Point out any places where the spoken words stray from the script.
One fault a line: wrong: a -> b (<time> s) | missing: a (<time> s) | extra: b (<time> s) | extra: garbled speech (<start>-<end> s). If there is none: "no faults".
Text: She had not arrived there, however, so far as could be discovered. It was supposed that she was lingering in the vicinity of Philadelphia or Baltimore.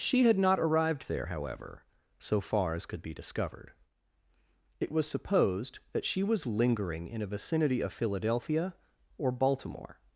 wrong: the -> a (7.2 s)